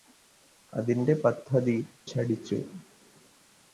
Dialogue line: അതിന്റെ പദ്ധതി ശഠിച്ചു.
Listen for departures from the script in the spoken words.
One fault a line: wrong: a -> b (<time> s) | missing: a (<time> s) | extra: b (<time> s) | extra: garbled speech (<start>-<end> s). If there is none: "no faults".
no faults